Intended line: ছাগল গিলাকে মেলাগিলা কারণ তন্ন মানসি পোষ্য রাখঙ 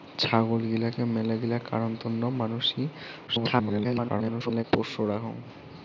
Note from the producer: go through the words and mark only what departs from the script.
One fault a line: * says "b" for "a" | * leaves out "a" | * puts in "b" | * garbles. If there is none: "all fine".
* garbles